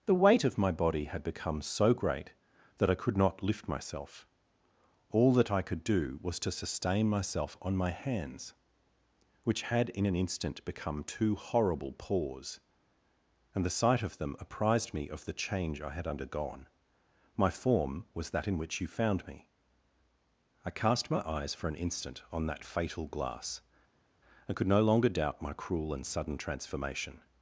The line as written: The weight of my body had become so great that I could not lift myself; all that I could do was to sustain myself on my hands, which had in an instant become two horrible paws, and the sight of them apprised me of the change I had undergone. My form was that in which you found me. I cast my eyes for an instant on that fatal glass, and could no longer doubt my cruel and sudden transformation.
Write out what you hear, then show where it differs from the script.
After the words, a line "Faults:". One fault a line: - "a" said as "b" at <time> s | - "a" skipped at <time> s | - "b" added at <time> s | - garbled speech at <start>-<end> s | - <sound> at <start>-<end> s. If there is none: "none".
The weight of my body had become so great that I could not lift myself; all that I could do was to sustain myself on my hands, which had in an instant become two horrible paws, and the sight of them apprised me of the change I had undergone. My form was that in which you found me. I cast my eyes for an instant on that fatal glass, and could no longer doubt my cruel and sudden transformation.
Faults:
none